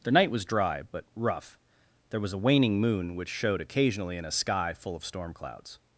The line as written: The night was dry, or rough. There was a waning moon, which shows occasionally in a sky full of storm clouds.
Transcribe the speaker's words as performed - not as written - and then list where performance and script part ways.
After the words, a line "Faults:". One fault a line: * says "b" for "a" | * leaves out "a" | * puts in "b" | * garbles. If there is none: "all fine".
The night was dry, but rough. There was a waning moon, which showed occasionally in a sky full of storm clouds.
Faults:
* says "but" for "or"
* says "showed" for "shows"